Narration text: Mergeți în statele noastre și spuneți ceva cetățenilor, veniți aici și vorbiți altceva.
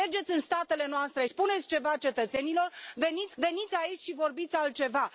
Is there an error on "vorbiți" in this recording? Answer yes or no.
no